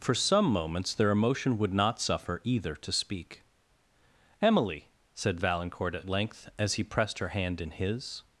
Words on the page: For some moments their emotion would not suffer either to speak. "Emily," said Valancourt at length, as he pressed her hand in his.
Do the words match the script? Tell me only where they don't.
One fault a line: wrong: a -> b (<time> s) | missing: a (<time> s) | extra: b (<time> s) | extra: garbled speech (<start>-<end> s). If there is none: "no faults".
no faults